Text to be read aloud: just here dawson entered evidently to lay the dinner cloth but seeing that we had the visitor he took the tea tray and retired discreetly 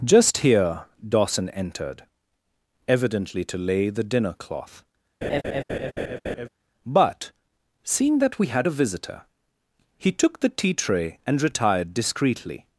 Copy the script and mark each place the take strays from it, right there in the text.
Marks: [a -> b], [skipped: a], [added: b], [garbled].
just here dawson entered evidently to lay the dinner cloth but seeing that we had [the -> a] visitor he took the tea tray and retired discreetly